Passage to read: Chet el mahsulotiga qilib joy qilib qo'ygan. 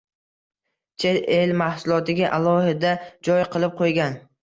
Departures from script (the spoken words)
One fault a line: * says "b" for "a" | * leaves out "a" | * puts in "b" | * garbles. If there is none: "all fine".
* says "alohida" for "qilib"